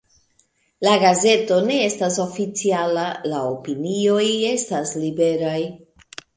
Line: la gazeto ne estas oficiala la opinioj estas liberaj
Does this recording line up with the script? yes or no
yes